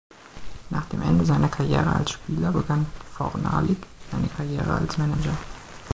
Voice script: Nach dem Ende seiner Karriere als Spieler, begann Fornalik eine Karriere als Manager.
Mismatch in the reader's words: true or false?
false